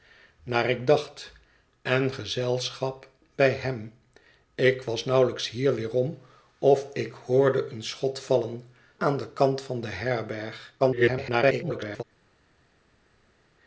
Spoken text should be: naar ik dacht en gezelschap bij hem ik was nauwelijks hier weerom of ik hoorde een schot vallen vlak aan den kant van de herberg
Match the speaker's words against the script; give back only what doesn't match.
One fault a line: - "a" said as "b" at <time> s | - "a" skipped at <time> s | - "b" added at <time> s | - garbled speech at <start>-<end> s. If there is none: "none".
- "vlak" skipped at 8.7 s
- garbled speech at 10.8-12.0 s